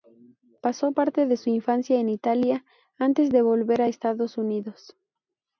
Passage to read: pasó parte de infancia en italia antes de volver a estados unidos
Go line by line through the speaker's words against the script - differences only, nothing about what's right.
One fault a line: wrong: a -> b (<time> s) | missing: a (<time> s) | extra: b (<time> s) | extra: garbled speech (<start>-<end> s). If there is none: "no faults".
extra: su (1.4 s)